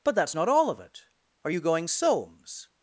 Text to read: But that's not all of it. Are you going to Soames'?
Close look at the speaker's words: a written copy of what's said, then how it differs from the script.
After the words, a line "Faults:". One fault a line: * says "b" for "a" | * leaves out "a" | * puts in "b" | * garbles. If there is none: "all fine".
But that's not all of it. Are you going Soames'?
Faults:
* leaves out "to"